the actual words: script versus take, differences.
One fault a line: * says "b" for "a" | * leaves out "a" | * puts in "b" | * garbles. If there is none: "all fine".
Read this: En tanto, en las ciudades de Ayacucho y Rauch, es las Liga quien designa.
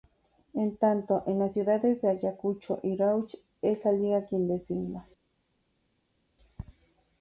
* says "la" for "las"